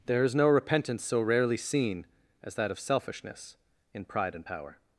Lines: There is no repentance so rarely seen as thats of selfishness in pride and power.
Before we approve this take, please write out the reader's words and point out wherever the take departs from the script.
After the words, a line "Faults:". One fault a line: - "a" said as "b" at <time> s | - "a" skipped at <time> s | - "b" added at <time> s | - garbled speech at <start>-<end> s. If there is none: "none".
There is no repentance so rarely seen as that of selfishness in pride and power.
Faults:
- "thats" said as "that" at 2.5 s